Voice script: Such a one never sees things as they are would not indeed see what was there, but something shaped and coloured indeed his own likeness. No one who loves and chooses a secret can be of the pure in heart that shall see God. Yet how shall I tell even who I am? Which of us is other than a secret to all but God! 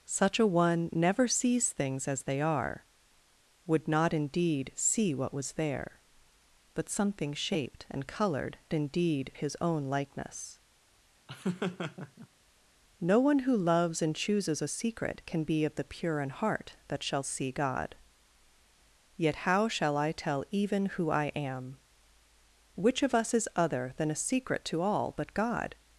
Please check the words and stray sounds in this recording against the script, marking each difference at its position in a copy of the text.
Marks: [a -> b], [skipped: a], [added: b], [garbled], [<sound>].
Such a one never sees things as they are would not indeed see what was there, but something shaped and coloured indeed his own likeness. [laugh] No one who loves and chooses a secret can be of the pure in heart that shall see God. Yet how shall I tell even who I am? Which of us is other than a secret to all but God!